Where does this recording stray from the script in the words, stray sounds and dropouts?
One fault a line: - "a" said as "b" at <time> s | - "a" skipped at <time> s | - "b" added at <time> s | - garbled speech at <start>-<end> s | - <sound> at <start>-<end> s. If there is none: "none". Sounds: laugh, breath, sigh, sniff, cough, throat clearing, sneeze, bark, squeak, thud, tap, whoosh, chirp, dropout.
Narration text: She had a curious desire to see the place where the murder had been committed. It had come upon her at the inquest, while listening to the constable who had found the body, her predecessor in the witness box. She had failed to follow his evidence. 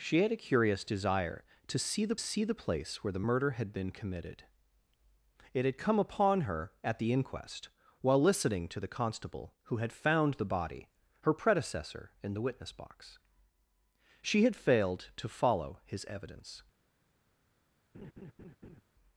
- "see the" added at 2.2 s
- laugh at 17.9-18.8 s